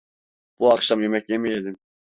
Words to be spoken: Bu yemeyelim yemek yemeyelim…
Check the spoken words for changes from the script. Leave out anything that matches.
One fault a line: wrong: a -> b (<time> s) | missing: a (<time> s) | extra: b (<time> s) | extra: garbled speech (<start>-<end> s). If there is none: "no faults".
wrong: yemeyelim -> akşam (0.7 s)